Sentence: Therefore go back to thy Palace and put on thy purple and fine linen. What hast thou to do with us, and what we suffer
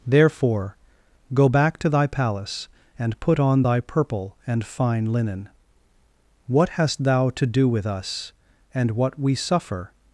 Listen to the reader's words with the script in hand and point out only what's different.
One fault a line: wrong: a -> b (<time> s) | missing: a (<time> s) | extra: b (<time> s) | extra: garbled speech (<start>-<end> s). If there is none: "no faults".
no faults